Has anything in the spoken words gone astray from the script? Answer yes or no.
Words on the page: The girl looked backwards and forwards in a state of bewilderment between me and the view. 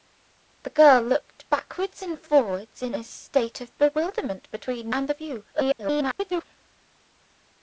yes